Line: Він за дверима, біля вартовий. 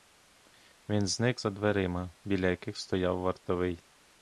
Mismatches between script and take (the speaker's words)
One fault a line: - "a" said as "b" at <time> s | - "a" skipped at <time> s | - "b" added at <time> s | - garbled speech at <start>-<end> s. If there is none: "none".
- "зник" added at 1.1 s
- "яких стояв" added at 2.5 s